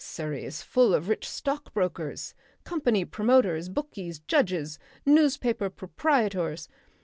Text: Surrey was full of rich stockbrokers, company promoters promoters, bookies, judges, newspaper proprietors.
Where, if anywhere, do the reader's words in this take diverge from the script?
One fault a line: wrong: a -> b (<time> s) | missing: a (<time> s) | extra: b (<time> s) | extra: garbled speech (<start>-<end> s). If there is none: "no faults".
wrong: was -> is (0.4 s)
missing: promoters (3.7 s)